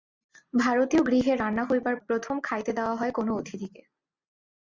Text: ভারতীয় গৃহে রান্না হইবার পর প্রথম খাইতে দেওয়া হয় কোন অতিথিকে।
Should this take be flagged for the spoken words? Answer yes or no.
yes